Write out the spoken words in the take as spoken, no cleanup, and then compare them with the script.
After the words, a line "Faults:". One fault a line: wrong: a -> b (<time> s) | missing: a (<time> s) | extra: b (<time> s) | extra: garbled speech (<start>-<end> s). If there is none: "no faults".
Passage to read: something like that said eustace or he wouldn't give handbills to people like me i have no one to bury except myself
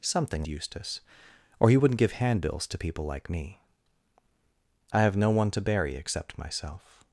something eustace or he wouldn't give handbills to people like me i have no one to bury except myself
Faults:
missing: like that said (0.4 s)